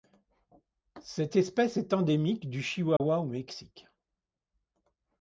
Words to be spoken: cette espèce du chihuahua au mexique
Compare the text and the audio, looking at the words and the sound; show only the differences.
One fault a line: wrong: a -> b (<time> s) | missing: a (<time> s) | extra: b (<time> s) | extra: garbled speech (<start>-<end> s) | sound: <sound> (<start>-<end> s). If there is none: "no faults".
extra: est endémique (1.8 s)
sound: dropout (3.0-3.0 s)